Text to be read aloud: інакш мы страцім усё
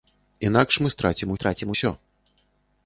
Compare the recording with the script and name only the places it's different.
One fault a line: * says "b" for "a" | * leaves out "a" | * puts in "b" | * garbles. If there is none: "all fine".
* puts in "страцім"